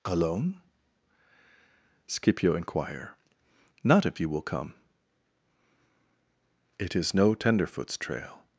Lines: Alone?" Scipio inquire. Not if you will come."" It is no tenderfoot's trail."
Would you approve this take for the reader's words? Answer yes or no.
yes